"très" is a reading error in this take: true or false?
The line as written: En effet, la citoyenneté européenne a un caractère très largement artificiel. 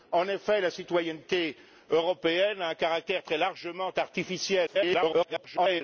false